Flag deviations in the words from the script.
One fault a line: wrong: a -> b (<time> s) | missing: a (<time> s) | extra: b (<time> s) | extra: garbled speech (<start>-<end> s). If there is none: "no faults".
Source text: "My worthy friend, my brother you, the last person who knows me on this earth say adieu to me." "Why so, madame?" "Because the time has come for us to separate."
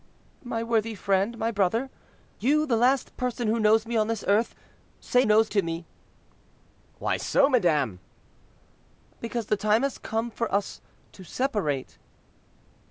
wrong: adieu -> knows (5.2 s)